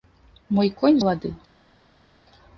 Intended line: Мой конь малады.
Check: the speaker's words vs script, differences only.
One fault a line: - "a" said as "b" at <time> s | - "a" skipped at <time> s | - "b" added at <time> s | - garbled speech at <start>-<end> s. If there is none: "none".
none